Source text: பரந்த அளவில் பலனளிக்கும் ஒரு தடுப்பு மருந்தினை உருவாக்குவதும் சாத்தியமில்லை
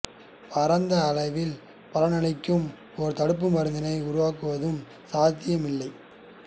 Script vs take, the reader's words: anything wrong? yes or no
no